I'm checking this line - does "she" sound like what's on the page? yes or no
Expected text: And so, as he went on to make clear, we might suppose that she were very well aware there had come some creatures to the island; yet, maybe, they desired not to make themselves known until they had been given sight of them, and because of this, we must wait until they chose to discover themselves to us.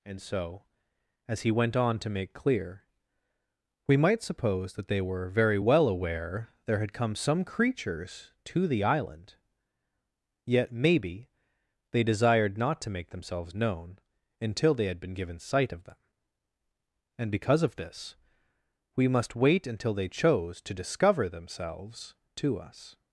no